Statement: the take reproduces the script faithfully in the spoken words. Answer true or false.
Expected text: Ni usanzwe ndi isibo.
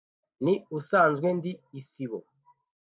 true